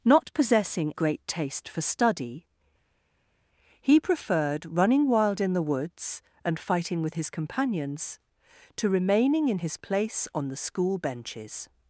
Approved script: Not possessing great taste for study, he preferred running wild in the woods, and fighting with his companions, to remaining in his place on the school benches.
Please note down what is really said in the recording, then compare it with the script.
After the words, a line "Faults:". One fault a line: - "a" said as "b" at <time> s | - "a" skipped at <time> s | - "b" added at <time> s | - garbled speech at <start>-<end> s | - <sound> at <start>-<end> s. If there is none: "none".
Not possessing great taste for study, he preferred running wild in the woods, and fighting with his companions, to remaining in his place on the school benches.
Faults:
none